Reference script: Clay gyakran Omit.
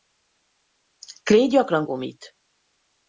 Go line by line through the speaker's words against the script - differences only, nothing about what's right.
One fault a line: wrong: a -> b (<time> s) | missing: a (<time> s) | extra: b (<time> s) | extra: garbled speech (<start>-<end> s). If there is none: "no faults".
no faults